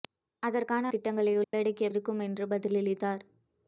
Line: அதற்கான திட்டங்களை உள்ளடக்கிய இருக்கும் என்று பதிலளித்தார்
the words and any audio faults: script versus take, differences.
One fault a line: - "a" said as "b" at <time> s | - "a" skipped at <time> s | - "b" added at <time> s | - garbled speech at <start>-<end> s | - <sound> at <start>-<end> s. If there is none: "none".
- dropout at 1.4-1.5 s